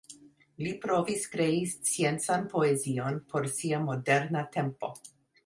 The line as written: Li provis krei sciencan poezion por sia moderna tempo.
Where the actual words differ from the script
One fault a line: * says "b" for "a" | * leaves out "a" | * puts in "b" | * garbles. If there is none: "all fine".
all fine